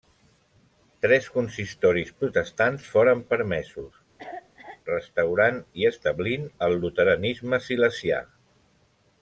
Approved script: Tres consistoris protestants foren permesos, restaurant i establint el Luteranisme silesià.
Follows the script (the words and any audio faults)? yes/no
no